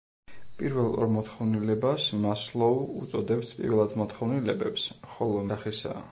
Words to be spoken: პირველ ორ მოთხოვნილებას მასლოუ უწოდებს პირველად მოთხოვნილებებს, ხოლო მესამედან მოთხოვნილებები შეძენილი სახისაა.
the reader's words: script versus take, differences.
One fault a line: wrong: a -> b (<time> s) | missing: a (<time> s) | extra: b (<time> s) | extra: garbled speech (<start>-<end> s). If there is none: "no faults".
missing: მესამედან მოთხოვნილებები შეძენილი (5.5 s)